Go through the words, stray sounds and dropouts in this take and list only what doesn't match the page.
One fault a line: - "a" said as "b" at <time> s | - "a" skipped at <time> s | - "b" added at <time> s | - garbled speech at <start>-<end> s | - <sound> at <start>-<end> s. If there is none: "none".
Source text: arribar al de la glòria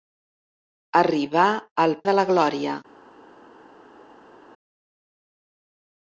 none